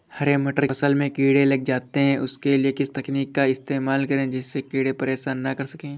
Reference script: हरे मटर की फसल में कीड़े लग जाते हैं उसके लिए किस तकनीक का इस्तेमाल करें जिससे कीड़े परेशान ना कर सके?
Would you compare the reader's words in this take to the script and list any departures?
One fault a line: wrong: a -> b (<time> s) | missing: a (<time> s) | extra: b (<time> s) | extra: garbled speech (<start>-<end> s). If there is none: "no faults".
missing: की (0.7 s)